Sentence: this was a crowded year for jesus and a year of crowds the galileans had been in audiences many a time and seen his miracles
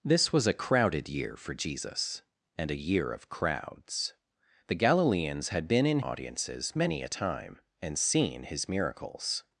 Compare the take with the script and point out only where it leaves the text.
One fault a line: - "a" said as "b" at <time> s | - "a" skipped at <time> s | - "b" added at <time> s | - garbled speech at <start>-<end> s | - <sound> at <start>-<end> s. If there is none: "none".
none